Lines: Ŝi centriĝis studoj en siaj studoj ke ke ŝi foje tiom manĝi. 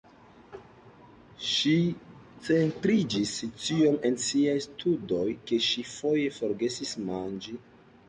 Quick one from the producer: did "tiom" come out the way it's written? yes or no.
no